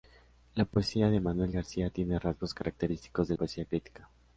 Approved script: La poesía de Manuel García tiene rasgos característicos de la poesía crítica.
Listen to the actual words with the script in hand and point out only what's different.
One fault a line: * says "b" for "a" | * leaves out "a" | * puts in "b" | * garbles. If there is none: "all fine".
* leaves out "la"